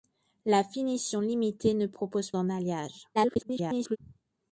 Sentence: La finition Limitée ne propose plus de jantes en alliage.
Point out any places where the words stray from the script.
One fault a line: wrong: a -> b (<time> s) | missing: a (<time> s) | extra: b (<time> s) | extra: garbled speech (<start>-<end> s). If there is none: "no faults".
missing: plus de jantes (2.3 s)
extra: garbled speech (3.1-4.0 s)